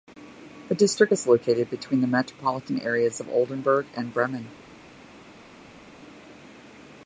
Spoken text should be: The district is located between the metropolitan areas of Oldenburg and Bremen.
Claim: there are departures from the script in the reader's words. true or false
false